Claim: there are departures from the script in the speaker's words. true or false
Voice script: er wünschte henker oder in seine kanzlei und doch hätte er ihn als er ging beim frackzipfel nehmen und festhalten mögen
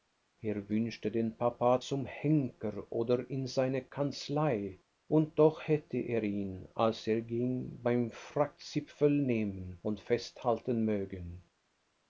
true